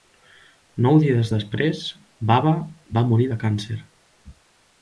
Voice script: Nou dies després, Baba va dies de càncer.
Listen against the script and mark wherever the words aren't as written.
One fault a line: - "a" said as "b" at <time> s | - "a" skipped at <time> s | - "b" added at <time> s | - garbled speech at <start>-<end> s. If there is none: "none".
- "dies" said as "morir" at 3.1 s